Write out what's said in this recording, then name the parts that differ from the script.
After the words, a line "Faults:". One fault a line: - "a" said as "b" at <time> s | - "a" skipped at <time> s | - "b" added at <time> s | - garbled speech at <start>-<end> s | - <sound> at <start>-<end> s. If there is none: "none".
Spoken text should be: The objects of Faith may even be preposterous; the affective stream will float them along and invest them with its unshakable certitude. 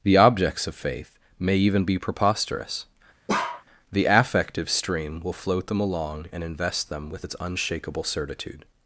The objects of Faith may even be preposterous; the affective stream will float them along and invest them with its unshakable certitude.
Faults:
- bark at 3.3-3.6 s